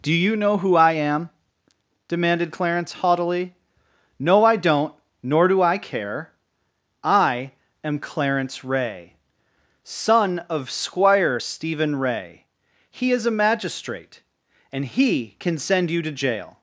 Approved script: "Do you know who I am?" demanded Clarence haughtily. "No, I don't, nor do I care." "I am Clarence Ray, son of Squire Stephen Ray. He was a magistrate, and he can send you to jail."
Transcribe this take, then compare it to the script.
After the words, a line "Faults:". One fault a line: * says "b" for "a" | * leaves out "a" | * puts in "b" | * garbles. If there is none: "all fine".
"Do you know who I am?" demanded Clarence haughtily. "No, I don't, nor do I care." "I am Clarence Ray, son of Squire Stephen Ray. He is a magistrate, and he can send you to jail."
Faults:
* says "is" for "was"